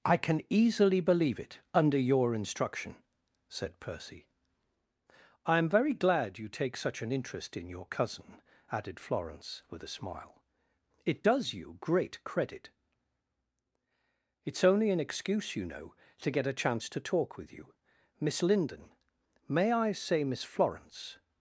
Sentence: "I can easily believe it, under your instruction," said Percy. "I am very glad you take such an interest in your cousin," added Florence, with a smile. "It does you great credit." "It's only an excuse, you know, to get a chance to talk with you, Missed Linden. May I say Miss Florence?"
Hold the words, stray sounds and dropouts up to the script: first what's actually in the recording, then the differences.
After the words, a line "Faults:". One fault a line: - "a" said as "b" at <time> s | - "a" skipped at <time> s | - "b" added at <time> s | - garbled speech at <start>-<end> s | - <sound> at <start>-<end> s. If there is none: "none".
"I can easily believe it, under your instruction," said Percy. "I am very glad you take such an interest in your cousin," added Florence, with a smile. "It does you great credit." "It's only an excuse, you know, to get a chance to talk with you, Miss Linden. May I say Miss Florence?"
Faults:
- "Missed" said as "Miss" at 18.2 s